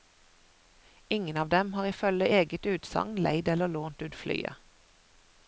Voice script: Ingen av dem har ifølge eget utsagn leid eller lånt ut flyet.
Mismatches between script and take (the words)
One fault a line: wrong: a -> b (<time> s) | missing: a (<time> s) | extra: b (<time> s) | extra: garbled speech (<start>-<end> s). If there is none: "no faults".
no faults